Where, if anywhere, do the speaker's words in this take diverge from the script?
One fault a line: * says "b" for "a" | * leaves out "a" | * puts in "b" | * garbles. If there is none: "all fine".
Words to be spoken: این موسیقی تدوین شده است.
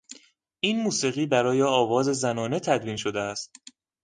* puts in "برای آواز زنانه"